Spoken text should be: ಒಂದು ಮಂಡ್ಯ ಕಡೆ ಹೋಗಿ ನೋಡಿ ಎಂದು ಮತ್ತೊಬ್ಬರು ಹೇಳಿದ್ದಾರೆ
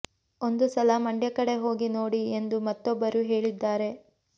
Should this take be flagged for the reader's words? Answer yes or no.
yes